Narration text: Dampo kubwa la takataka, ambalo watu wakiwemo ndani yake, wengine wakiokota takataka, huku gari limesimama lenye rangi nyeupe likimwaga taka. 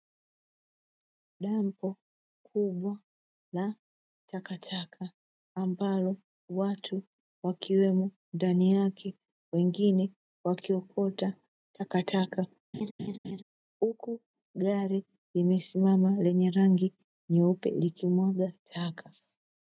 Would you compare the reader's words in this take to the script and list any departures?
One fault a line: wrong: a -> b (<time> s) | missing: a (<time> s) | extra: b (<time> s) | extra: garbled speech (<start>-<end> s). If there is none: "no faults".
no faults